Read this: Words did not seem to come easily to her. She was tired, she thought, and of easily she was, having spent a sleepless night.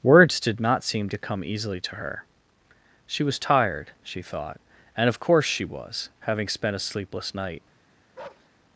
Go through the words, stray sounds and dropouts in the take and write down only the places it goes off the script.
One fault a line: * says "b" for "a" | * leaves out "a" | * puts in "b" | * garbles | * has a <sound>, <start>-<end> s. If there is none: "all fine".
* says "course" for "easily"
* has a bark, 8.1-8.5 s